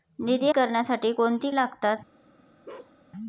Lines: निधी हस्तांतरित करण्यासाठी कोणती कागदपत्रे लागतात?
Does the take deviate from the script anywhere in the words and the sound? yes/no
yes